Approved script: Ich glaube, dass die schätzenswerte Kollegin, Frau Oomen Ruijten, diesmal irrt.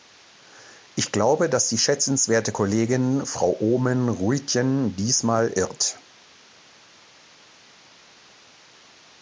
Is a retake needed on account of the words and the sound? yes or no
no